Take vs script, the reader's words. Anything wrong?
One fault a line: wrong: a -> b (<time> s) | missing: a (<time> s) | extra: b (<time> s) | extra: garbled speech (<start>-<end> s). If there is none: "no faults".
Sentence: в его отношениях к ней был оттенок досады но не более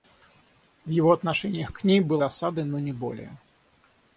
missing: оттенок (2.2 s)